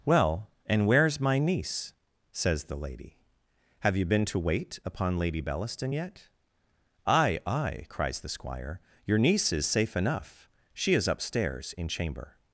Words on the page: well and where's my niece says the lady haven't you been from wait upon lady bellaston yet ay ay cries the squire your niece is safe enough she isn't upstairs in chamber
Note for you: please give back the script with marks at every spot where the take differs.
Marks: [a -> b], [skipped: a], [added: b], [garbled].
well and where's my niece says the lady [haven't -> have] you been [from -> to] wait upon lady bellaston yet ay ay cries the squire your niece is safe enough she [isn't -> is] upstairs in chamber